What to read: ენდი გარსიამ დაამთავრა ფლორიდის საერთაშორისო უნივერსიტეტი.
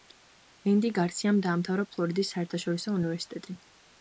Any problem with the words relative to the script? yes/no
no